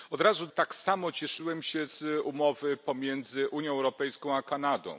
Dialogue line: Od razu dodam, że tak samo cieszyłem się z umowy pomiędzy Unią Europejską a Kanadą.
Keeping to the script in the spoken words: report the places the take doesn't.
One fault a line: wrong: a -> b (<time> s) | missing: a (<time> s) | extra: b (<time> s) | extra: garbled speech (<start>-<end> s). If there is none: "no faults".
missing: dodam że (0.5 s)